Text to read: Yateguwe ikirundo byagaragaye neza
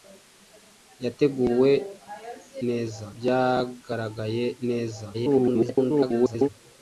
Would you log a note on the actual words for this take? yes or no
yes